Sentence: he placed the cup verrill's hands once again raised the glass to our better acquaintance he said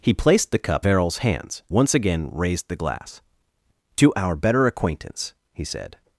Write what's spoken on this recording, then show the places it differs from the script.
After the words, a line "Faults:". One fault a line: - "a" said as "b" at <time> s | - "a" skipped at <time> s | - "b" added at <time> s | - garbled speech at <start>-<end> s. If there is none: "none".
he placed the cup verrill's hands once again raised the glass to our better acquaintance he said
Faults:
none